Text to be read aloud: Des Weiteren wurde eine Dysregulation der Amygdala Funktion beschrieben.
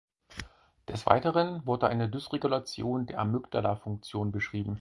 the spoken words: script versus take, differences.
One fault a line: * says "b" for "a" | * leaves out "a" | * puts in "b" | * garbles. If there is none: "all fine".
all fine